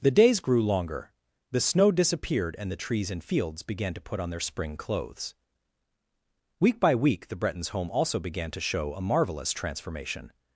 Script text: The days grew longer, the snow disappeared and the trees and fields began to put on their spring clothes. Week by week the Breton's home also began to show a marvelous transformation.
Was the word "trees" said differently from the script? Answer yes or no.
no